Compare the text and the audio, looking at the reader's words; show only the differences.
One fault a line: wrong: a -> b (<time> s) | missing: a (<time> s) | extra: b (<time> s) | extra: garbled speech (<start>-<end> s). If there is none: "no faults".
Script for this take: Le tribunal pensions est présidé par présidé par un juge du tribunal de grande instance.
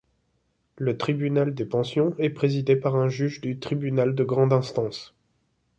extra: des (1.5 s)
missing: présidé par (2.9 s)